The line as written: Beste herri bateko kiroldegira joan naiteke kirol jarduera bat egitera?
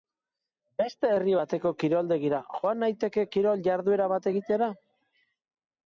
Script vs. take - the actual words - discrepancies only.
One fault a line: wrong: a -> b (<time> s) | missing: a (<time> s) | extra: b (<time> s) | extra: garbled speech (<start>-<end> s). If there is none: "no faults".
no faults